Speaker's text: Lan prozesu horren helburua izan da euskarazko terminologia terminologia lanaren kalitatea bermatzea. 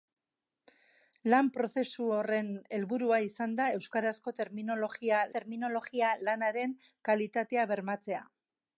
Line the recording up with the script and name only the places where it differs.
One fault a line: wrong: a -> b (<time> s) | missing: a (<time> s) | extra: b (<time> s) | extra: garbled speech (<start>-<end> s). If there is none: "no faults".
no faults